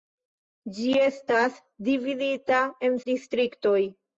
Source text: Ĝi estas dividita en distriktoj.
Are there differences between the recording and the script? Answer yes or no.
no